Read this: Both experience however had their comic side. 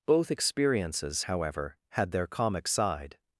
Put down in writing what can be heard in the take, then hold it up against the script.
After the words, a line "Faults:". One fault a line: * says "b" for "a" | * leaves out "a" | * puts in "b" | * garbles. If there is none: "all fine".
Both experiences however had their comic side.
Faults:
* says "experiences" for "experience"